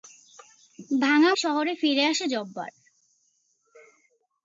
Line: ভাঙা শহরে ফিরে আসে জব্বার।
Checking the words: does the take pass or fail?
pass